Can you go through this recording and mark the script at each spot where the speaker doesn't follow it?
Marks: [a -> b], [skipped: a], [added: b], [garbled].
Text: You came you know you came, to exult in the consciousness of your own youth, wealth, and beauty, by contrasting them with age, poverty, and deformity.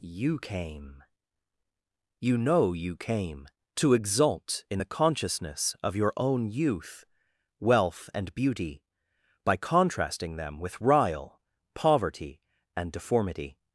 You came you know you came, to exult in the consciousness of your own youth, wealth, and beauty, by contrasting them with [age, -> rile] poverty, and deformity.